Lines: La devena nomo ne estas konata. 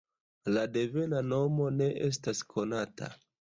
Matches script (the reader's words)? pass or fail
pass